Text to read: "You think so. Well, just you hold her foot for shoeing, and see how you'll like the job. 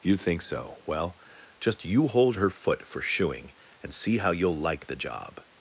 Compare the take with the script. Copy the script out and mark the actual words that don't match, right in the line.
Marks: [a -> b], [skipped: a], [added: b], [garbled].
"You think so. Well, just you hold her foot for shoeing, and see how you'll like the job.